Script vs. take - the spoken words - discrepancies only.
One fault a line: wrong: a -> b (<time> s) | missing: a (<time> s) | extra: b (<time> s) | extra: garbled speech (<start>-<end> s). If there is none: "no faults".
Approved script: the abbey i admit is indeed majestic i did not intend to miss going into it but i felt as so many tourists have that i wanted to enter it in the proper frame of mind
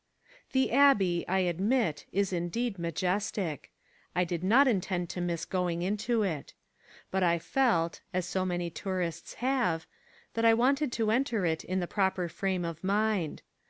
no faults